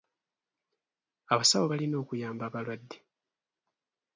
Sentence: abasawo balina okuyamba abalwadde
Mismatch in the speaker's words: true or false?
false